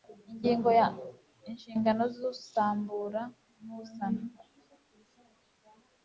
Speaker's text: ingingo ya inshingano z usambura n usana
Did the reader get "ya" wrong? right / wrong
right